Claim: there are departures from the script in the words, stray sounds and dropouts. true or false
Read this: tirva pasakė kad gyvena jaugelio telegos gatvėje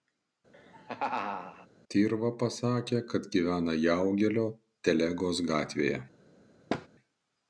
true